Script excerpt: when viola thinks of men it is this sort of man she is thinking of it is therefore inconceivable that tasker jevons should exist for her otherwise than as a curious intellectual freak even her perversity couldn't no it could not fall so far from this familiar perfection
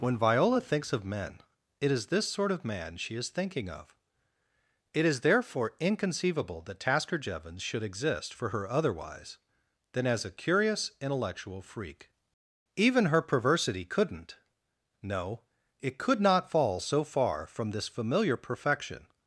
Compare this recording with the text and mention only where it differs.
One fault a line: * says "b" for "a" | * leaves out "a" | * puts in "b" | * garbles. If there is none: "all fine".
all fine